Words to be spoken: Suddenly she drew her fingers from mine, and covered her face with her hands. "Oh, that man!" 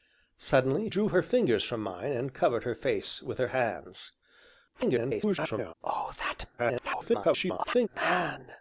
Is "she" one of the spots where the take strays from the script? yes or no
yes